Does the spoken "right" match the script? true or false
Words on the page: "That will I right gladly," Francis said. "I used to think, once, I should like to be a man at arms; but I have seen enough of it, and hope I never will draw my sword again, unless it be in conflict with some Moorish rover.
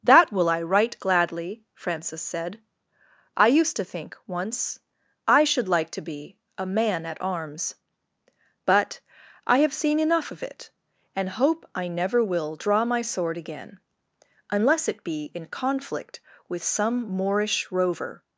true